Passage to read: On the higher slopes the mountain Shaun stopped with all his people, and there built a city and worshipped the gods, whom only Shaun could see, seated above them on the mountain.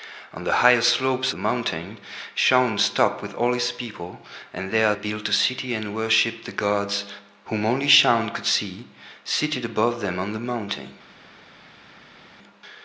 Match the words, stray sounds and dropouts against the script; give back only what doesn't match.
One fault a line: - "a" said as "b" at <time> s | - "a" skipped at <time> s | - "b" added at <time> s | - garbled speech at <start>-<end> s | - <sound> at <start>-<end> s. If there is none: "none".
none